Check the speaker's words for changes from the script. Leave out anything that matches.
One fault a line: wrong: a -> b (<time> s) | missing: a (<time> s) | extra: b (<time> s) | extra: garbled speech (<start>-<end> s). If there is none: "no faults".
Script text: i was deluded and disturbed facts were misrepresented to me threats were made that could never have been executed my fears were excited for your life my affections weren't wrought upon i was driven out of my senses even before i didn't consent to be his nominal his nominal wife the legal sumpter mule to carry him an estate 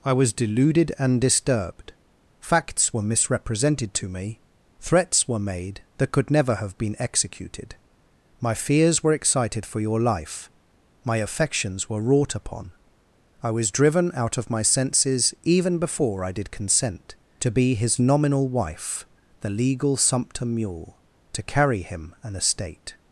wrong: weren't -> were (11.9 s)
wrong: didn't -> did (16.3 s)
missing: his nominal (18.5 s)